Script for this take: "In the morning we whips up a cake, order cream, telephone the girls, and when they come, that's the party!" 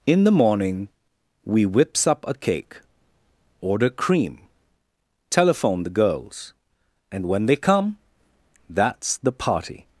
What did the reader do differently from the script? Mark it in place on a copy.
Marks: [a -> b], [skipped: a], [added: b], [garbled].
"In the morning we whips up a cake, order cream, telephone the girls, and when they come, that's the party!"